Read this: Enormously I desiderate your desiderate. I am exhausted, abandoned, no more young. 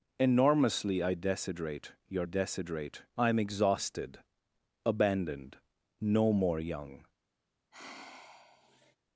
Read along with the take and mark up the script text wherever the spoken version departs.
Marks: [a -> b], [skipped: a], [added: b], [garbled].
Enormously I desiderate your desiderate. I am exhausted, abandoned, no more young.